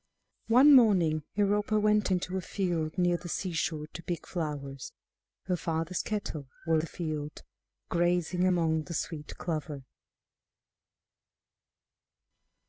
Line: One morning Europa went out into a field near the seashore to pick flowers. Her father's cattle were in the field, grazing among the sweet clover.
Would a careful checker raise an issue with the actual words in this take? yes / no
yes